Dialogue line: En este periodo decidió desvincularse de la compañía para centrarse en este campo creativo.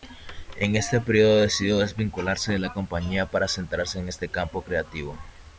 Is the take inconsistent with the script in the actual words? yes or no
no